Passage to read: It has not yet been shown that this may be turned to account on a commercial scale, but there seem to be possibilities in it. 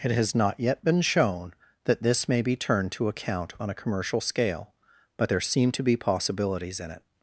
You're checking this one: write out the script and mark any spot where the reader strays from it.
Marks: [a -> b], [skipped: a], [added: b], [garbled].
It has not yet been shown that this may be turned to account on a commercial scale, but there seem to be possibilities in it.